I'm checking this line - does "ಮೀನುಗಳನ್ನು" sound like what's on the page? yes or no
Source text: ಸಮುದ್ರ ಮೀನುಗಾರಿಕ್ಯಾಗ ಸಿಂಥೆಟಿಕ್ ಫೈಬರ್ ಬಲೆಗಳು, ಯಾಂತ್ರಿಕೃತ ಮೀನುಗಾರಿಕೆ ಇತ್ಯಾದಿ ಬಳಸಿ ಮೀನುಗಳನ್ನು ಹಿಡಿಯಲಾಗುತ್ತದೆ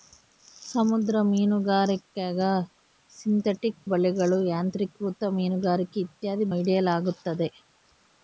no